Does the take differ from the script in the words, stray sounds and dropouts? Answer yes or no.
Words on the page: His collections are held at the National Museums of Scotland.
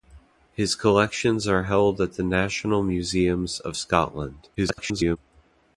yes